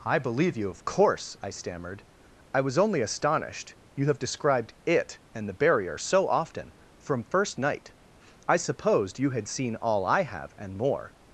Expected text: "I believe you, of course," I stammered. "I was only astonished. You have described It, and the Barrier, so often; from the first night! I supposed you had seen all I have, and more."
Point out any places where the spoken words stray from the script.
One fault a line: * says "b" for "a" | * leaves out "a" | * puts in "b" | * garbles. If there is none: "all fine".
* leaves out "the"